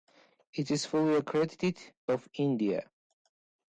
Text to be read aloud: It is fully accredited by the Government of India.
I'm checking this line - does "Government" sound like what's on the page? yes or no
no